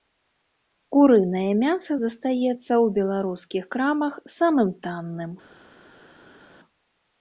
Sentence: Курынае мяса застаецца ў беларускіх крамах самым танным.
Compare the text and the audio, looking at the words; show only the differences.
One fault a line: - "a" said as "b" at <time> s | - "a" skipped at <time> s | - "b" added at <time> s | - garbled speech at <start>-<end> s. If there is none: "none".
none